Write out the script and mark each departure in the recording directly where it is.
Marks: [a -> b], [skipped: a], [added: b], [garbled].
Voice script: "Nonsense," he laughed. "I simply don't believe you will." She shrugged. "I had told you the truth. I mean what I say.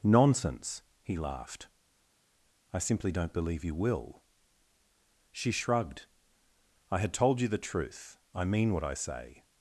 "Nonsense," he laughed. "I simply don't believe you will." She shrugged. "I had told you the truth. I mean what I say.